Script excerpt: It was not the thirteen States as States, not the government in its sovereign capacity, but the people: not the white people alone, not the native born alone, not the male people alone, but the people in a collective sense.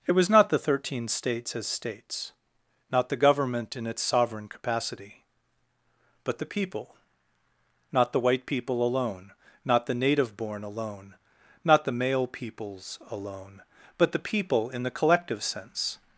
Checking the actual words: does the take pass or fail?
fail